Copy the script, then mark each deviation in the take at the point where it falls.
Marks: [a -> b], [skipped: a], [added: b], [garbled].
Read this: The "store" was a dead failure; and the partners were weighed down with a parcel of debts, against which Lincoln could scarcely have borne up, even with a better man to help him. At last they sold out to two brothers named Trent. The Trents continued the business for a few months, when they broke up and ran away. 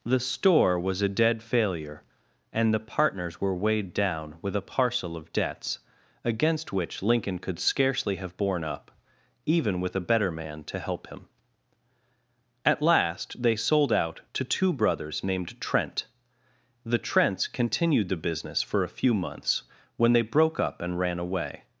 The "store" was a dead failure; and the partners were weighed down with a parcel of debts, against which Lincoln could scarcely have borne up, even with a better man to help him. At last they sold out to two brothers named Trent. The Trents continued the business for a few months, when they broke up and ran away.